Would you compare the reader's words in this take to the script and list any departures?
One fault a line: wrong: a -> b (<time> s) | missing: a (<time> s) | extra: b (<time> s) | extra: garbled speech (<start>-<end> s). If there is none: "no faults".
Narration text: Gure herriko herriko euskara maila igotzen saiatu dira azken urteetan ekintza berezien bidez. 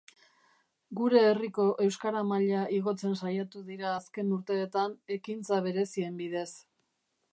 missing: herriko (1.6 s)